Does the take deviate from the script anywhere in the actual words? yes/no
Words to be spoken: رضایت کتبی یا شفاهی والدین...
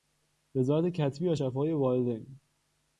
no